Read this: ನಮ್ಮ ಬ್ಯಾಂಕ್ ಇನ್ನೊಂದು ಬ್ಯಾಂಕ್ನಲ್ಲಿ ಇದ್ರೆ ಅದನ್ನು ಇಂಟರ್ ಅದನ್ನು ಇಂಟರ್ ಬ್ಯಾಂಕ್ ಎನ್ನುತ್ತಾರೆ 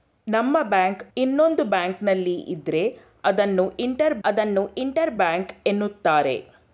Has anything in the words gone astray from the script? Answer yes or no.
no